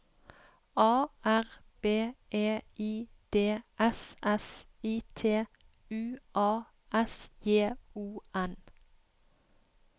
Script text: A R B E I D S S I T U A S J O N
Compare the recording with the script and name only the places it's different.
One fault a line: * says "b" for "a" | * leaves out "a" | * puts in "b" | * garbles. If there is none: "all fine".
all fine